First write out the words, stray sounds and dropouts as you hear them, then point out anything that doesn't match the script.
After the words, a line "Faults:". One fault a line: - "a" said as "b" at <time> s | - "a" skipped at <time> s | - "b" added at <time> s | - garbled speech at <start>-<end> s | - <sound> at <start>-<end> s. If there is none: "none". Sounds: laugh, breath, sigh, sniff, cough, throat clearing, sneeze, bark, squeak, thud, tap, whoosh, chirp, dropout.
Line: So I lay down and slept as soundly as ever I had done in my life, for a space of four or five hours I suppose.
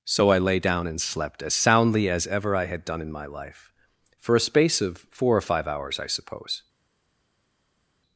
So I lay down and slept as soundly as ever I had done in my life, for a space of four or five hours I suppose.
Faults:
none